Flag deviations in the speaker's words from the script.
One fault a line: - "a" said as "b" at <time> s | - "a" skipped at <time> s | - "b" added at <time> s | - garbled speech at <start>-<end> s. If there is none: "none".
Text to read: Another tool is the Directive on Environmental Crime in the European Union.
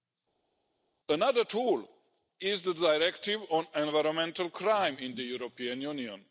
none